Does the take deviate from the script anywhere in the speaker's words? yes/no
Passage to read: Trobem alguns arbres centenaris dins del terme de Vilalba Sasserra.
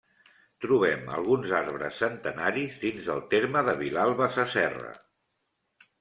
no